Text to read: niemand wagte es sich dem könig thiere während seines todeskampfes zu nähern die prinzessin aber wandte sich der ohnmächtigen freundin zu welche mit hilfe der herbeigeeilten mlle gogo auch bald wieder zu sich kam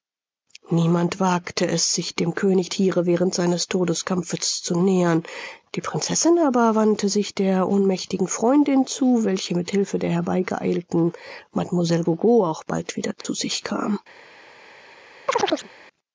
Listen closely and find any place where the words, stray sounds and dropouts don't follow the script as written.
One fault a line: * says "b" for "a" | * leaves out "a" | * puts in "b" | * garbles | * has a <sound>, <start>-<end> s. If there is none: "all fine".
* has a dropout, 13.2-13.2 s
* has a chirp, 15.3-15.7 s